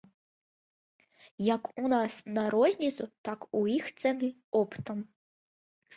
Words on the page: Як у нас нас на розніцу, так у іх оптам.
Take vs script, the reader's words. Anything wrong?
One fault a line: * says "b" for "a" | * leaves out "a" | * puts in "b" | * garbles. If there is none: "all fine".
* leaves out "нас"
* puts in "цэны"